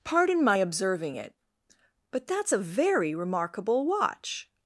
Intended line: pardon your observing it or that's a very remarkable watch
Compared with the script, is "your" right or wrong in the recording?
wrong